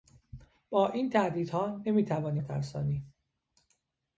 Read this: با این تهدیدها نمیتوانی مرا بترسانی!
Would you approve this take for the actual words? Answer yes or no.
no